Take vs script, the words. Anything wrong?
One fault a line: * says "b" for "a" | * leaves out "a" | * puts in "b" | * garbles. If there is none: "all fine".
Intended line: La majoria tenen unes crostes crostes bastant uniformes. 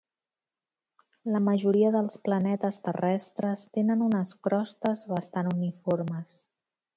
* puts in "dels planetes terrestres"
* leaves out "crostes"